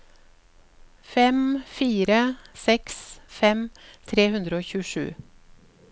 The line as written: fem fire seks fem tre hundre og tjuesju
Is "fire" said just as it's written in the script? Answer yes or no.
yes